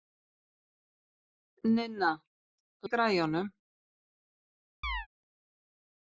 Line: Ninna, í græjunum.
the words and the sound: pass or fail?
fail